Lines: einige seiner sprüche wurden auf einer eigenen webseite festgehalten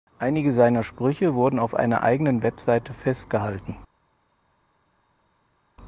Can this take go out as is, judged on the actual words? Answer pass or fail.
pass